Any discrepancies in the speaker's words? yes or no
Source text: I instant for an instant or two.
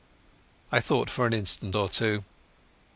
yes